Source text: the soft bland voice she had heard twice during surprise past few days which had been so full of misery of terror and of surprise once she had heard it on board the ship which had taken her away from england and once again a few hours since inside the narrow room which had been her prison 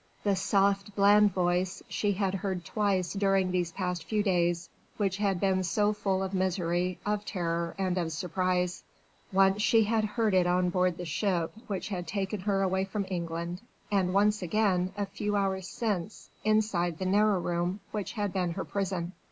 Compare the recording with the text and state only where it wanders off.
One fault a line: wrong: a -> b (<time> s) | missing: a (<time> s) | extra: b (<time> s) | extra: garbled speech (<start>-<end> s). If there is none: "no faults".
wrong: surprise -> these (3.5 s)